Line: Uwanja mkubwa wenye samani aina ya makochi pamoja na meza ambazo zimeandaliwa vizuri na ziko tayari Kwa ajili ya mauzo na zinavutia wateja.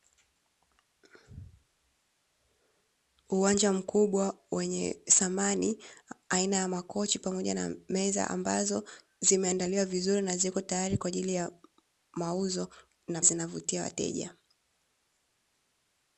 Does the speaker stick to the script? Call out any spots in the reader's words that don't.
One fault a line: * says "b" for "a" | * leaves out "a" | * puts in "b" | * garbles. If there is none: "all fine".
all fine